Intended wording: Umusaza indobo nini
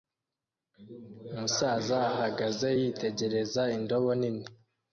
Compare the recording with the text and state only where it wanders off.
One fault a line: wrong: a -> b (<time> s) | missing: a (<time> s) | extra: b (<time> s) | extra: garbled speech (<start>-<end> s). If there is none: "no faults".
extra: ahagaze yitegereza (2.1 s)